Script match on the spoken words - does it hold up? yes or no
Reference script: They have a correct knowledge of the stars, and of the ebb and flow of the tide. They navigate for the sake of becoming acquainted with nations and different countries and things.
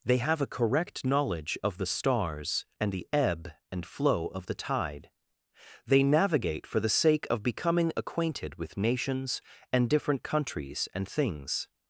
no